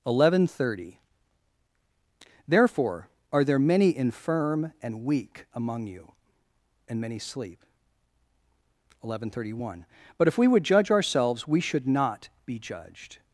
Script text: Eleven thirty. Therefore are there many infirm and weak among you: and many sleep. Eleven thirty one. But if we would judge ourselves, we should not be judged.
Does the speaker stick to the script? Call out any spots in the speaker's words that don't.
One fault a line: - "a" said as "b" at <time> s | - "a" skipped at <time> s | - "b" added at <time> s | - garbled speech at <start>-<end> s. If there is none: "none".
none